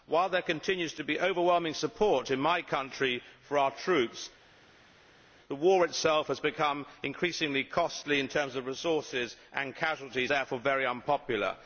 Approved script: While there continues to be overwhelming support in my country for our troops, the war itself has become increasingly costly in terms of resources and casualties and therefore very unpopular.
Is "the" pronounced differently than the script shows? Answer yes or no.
no